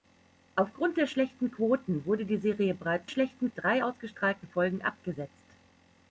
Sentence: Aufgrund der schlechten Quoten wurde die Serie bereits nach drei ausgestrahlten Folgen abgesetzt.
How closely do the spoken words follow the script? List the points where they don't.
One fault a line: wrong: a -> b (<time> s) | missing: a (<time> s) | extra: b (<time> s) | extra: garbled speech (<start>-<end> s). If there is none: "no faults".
wrong: nach -> schlechten (3.1 s)